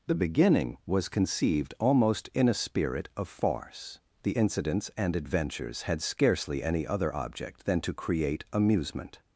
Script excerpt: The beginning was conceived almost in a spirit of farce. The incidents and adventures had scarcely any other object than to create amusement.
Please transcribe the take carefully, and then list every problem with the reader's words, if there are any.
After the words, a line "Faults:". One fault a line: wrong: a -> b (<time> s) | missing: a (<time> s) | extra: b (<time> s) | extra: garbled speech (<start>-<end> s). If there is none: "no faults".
The beginning was conceived almost in a spirit of farce. The incidents and adventures had scarcely any other object than to create amusement.
Faults:
no faults